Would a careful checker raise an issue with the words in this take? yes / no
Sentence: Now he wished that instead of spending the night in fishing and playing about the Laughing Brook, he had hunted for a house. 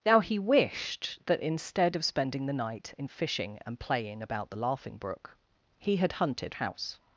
yes